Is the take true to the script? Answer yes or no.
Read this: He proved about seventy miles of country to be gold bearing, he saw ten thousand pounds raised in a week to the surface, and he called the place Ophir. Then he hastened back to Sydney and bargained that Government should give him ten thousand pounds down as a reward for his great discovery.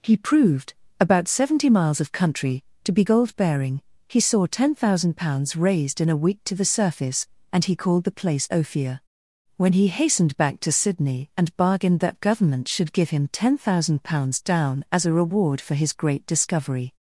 no